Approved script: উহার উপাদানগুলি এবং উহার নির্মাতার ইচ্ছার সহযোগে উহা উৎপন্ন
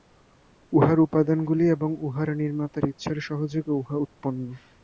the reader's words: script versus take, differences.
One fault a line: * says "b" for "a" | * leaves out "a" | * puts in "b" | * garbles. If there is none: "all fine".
all fine